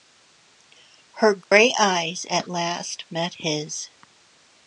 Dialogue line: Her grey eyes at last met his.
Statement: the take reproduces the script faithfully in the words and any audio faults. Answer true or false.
false